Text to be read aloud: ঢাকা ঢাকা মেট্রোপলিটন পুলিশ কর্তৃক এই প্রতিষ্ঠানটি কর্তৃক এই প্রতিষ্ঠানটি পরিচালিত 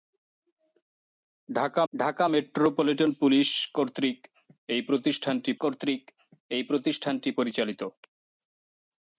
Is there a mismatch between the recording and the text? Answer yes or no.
no